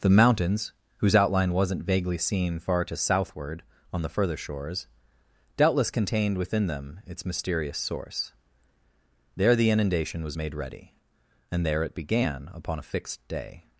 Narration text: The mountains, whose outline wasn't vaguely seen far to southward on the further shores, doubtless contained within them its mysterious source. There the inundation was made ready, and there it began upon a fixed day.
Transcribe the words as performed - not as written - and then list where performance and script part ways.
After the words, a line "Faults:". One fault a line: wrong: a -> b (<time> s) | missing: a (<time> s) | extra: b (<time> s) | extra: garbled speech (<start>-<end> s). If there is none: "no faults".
The mountains, whose outline wasn't vaguely seen far to southward on the further shores, doubtless contained within them its mysterious source. There the inundation was made ready, and there it began upon a fixed day.
Faults:
no faults